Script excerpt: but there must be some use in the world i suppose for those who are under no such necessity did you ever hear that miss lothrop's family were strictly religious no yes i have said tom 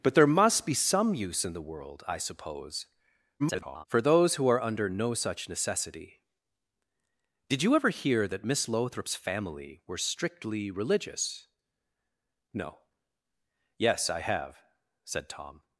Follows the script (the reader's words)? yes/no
no